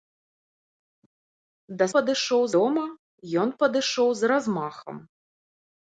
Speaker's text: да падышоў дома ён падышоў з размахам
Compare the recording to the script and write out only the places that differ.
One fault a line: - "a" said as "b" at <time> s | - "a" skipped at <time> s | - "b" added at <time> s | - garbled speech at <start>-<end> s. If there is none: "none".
none